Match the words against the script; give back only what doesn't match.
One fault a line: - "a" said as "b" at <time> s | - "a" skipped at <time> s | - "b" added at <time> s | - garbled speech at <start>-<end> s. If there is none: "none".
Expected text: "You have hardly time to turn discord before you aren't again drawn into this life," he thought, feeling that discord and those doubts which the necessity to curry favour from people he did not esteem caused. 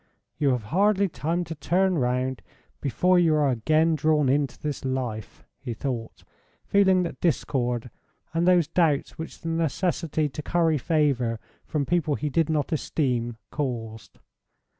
- "discord" said as "round" at 2.0 s
- "aren't" said as "are" at 3.4 s